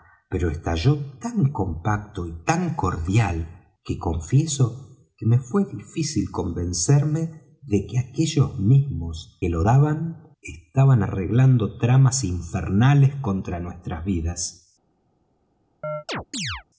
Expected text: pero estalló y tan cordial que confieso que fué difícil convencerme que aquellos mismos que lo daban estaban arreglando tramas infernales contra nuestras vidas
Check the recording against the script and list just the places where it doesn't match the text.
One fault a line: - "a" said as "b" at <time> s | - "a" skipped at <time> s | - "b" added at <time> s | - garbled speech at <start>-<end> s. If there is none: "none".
- "tan compacto" added at 1.2 s
- "me" added at 5.2 s
- "de" added at 7.6 s